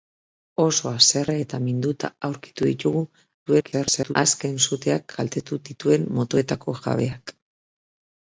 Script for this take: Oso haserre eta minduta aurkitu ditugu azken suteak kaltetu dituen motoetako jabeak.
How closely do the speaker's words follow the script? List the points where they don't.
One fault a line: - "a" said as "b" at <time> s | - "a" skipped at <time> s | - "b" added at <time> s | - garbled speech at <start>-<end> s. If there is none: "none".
- garbled speech at 3.5-4.1 s